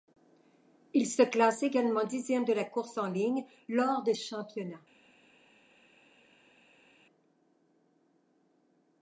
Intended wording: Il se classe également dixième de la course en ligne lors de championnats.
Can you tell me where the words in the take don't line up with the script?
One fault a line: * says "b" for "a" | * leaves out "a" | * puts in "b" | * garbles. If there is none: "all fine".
all fine